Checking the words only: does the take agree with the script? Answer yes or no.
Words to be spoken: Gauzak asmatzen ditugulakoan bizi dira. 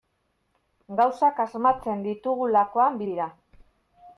no